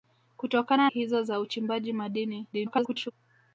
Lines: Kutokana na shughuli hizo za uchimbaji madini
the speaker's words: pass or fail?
fail